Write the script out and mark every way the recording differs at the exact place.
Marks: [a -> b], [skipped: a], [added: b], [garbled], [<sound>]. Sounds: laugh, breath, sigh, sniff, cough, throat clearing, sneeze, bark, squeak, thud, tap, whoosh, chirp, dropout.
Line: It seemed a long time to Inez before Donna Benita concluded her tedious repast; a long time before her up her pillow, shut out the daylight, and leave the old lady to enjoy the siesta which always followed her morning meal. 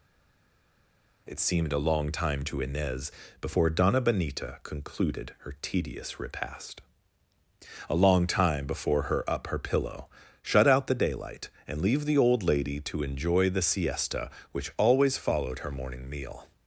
It seemed a long time to Inez before Donna Benita concluded her tedious repast; a long time before her up her pillow, shut out the daylight, and leave the old lady to enjoy the siesta which always followed her morning meal.